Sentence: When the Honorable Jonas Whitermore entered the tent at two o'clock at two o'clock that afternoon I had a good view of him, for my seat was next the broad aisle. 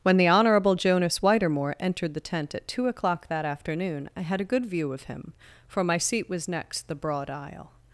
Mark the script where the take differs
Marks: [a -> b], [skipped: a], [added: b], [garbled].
When the Honorable Jonas Whitermore entered the tent at two o'clock [skipped: at two o'clock] that afternoon I had a good view of him, for my seat was next the broad aisle.